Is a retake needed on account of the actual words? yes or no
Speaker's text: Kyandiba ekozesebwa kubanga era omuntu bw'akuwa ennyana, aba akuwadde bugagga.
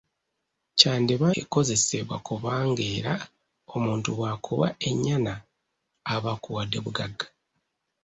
no